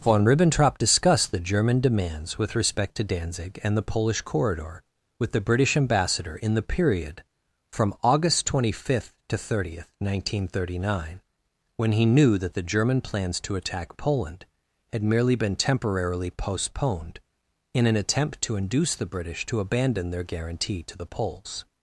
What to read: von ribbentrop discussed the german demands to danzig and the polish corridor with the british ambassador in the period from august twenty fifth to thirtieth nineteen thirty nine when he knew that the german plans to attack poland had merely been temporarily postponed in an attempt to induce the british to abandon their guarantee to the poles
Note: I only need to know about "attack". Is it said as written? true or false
true